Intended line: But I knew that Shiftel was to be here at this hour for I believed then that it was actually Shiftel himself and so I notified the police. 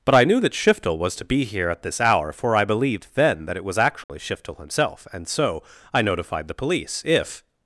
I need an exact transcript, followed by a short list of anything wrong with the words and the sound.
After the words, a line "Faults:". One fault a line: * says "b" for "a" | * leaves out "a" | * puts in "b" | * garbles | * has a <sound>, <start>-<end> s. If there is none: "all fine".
But I knew that Shiftel was to be here at this hour for I believed then that it was actually Shiftel himself and so I notified the police. If
Faults:
* has a dropout, 4.0-4.1 s
* puts in "If"